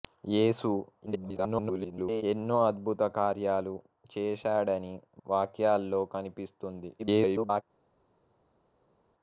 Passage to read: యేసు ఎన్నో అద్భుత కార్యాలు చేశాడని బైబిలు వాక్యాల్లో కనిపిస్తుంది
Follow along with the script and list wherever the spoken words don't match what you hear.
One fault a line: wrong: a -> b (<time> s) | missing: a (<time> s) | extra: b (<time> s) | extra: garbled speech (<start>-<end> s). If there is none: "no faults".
extra: garbled speech (1.1-2.2 s)
missing: బైబిలు (4.9 s)
extra: garbled speech (7.0-7.6 s)